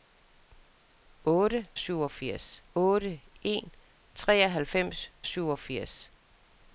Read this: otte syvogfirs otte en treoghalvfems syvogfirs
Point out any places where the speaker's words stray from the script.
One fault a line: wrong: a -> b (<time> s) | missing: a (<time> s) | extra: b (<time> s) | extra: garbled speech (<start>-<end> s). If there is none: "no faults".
no faults